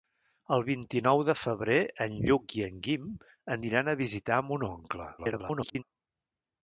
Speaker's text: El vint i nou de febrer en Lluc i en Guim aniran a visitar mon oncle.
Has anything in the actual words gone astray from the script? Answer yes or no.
yes